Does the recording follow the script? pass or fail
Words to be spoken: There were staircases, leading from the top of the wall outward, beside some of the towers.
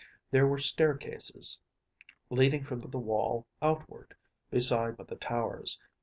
fail